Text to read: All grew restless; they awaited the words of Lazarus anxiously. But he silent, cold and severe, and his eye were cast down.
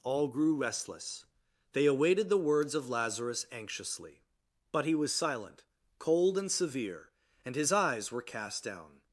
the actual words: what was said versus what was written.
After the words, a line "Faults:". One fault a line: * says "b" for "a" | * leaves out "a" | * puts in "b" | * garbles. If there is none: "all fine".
All grew restless; they awaited the words of Lazarus anxiously. But he was silent, cold and severe, and his eyes were cast down.
Faults:
* puts in "was"
* says "eyes" for "eye"